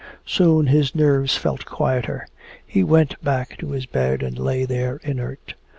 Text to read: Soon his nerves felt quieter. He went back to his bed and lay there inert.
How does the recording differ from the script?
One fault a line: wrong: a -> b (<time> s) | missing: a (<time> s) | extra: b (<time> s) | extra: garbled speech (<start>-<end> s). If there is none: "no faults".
no faults